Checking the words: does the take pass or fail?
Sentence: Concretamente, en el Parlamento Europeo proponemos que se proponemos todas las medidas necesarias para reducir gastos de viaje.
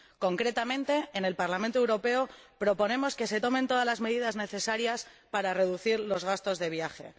fail